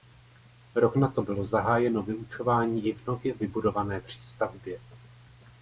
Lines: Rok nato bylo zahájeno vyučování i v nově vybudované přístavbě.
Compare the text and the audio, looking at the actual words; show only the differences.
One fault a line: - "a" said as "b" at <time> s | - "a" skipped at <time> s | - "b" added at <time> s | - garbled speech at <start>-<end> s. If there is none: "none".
none